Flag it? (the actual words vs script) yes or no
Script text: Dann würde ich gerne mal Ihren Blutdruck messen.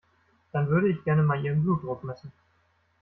no